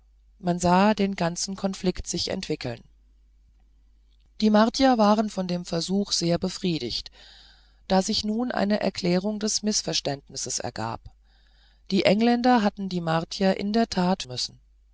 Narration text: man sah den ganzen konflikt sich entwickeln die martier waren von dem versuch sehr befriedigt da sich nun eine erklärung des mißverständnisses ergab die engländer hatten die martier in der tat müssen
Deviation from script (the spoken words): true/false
false